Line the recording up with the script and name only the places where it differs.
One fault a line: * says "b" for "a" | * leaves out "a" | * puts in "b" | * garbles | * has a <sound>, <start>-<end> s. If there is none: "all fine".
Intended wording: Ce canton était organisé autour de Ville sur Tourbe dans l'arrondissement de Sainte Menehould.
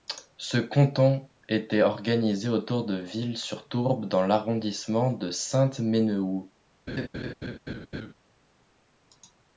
* has a laugh, 6.9-8.1 s